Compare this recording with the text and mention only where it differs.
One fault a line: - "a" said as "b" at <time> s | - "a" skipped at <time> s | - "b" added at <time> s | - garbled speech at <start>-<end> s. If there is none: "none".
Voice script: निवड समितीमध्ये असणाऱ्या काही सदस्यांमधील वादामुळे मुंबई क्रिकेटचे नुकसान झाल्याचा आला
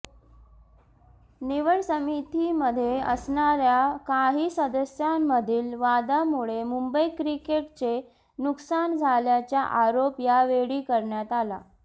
- "आरोप यावेळी करण्यात" added at 9.8 s